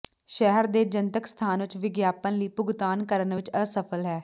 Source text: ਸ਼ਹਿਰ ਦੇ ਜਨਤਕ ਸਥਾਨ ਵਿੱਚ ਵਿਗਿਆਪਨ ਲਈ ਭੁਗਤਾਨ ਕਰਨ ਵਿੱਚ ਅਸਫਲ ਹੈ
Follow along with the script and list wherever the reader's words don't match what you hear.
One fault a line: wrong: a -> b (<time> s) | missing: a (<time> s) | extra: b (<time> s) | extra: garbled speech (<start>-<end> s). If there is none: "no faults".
no faults